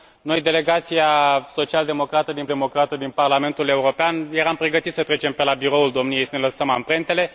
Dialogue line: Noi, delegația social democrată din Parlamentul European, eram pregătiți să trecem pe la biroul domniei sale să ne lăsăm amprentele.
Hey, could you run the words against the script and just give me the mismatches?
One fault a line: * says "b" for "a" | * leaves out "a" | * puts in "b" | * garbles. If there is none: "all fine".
* puts in "democrată din"
* leaves out "sale"